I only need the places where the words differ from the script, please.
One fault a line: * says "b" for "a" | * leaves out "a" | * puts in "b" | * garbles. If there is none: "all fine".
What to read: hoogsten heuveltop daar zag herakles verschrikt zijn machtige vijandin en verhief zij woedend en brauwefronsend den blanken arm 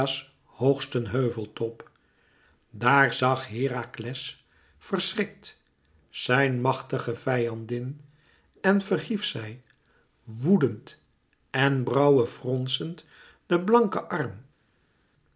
all fine